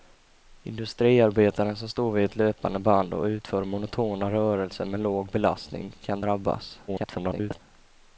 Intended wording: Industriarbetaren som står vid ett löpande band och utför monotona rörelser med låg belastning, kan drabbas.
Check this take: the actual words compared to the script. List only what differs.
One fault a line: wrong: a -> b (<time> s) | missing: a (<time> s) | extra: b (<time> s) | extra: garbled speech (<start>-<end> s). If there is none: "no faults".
extra: garbled speech (6.9-7.6 s)